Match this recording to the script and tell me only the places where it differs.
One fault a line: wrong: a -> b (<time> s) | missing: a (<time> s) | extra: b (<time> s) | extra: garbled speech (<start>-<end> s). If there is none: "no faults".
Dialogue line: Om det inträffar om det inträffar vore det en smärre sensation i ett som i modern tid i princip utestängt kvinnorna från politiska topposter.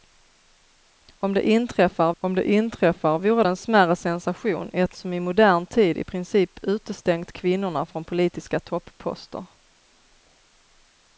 no faults